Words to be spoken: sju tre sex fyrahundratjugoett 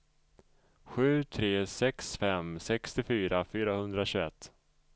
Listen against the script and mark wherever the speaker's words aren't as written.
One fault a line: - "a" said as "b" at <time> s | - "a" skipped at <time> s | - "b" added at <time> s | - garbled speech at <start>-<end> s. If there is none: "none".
- "fem sextiofyra" added at 2.1 s